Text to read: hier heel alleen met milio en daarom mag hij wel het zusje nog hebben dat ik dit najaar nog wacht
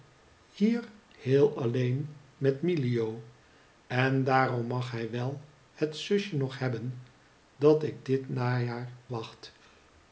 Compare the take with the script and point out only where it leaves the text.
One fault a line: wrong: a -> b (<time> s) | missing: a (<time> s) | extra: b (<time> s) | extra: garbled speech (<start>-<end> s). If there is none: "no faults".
missing: nog (8.9 s)